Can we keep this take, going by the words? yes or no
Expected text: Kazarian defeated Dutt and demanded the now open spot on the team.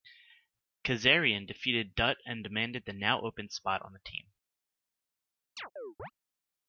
yes